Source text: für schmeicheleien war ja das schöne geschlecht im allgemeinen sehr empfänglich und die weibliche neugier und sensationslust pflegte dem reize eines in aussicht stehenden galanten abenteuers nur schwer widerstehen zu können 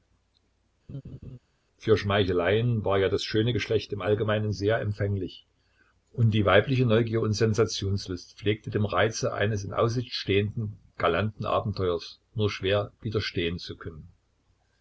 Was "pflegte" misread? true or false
false